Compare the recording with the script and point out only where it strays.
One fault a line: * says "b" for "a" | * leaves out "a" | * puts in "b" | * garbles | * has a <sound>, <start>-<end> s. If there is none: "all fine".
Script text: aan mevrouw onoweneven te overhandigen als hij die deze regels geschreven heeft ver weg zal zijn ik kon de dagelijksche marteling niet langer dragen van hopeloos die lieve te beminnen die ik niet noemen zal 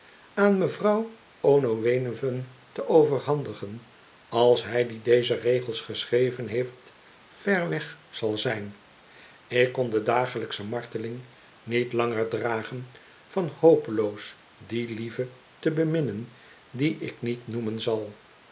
all fine